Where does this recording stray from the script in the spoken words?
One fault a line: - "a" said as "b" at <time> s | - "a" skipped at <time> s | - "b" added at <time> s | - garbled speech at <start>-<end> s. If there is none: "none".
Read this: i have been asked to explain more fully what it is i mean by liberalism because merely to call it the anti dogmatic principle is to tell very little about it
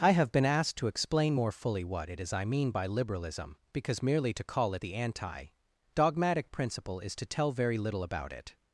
none